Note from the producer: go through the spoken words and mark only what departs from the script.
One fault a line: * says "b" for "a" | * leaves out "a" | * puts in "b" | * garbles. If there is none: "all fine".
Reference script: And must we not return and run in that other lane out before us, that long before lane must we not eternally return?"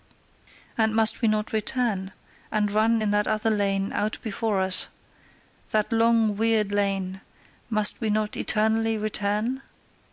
* says "weird" for "before"